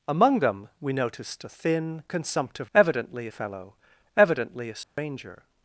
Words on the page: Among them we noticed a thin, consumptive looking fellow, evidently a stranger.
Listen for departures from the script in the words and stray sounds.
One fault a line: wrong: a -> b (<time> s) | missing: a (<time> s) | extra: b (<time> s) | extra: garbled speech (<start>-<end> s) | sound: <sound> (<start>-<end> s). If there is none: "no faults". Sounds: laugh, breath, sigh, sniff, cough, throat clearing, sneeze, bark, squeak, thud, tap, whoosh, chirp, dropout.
wrong: looking -> evidently (2.7 s)
sound: dropout (4.8-5.0 s)